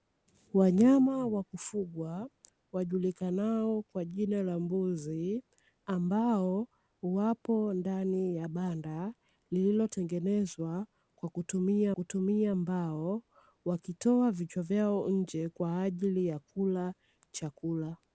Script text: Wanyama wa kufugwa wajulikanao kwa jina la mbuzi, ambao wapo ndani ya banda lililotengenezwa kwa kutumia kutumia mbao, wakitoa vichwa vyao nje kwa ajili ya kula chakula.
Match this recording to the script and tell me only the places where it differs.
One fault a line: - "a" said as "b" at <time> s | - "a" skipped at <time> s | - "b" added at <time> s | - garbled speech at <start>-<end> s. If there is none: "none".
none